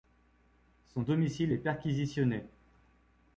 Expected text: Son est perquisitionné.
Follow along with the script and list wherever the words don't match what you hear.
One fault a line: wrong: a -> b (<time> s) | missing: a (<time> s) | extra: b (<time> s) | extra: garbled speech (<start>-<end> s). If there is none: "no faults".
extra: domicile (1.0 s)